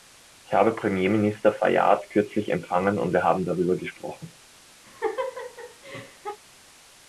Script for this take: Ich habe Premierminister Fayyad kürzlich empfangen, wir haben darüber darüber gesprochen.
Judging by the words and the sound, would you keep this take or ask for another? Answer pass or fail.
fail